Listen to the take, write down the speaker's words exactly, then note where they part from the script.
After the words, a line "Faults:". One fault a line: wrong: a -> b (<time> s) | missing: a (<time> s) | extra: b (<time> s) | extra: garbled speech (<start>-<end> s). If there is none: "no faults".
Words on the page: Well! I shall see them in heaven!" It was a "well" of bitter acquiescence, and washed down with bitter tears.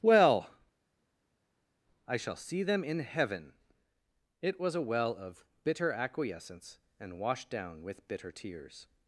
Well! I shall see them in heaven!" It was a "well" of bitter acquiescence, and washed down with bitter tears.
Faults:
no faults